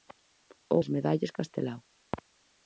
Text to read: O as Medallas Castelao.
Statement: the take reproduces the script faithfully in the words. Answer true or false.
true